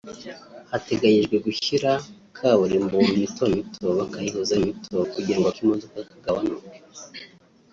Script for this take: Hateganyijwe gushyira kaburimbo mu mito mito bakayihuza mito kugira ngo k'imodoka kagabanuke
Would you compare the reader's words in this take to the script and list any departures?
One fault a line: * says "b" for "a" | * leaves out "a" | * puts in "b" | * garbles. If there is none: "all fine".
all fine